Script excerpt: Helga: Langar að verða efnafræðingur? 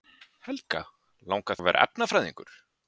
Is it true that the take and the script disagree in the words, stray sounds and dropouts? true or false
false